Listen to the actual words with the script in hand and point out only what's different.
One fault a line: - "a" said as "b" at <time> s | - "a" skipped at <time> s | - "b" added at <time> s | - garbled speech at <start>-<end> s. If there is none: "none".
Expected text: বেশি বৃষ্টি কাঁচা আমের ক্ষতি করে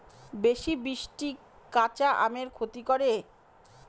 none